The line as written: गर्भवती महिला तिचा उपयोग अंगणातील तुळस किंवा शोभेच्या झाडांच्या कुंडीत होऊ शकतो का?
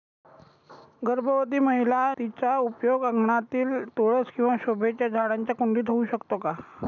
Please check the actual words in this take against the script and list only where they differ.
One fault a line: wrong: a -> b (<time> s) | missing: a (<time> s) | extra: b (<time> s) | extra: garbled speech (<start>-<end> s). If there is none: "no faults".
no faults